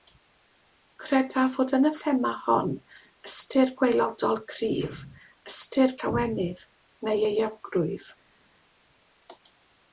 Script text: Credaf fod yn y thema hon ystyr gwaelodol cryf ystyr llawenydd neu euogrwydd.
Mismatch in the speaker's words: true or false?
false